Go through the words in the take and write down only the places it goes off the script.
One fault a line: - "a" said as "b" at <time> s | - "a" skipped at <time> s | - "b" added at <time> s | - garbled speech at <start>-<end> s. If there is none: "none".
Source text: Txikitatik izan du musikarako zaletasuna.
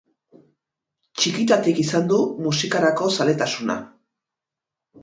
none